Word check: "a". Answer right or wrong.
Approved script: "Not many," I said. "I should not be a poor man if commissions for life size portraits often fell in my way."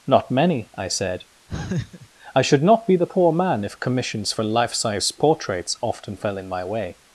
wrong